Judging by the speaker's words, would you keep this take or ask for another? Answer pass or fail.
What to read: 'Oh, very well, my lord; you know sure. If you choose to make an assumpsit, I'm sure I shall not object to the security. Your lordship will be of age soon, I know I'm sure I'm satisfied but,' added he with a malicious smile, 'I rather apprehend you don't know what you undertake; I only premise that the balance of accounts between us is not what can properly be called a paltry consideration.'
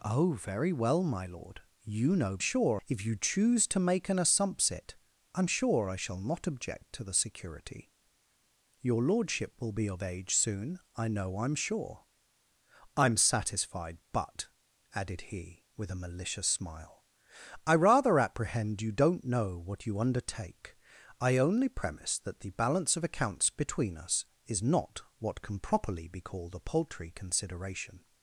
pass